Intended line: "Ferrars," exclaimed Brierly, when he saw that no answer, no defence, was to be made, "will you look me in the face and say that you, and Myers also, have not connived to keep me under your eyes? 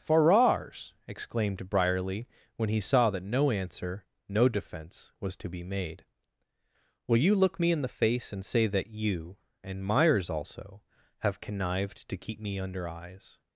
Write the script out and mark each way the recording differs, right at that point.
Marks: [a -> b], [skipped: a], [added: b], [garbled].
"Ferrars," exclaimed Brierly, when he saw that no answer, no defence, was to be made, "will you look me in the face and say that you, and Myers also, have [skipped: not] connived to keep me under [skipped: your] eyes?